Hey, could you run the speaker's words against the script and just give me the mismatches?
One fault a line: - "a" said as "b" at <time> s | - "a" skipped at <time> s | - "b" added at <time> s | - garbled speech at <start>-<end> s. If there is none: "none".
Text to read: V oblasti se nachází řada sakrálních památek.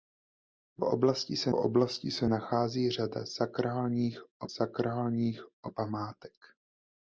- "oblasti se" added at 1.5 s
- "sakrálních" added at 4.5 s